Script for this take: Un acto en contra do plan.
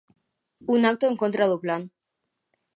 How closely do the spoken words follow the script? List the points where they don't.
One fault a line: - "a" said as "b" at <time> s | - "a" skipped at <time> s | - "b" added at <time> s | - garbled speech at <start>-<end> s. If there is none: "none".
none